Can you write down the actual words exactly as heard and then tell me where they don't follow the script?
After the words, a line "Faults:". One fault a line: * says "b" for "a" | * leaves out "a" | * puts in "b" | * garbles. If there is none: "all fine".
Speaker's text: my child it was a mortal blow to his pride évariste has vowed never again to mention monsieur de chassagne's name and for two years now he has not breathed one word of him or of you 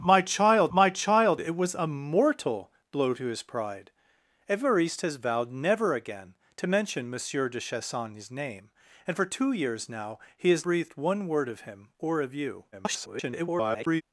my child my child it was a mortal blow to his pride évariste has vowed never again to mention monsieur de chassagne's name and for two years now he has breathed one word of him or of you [garbled]
Faults:
* puts in "my child"
* leaves out "not"
* garbles